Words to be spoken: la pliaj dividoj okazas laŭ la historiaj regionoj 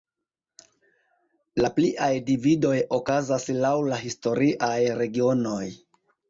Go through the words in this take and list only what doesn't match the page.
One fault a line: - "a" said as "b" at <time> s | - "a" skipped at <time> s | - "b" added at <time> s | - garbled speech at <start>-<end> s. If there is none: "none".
none